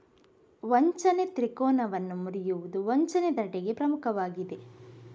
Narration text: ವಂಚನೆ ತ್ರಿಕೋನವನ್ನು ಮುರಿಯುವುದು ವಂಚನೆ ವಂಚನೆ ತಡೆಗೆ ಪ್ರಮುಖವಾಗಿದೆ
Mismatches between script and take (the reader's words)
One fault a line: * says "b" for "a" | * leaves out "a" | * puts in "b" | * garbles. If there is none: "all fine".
* leaves out "ವಂಚನೆ"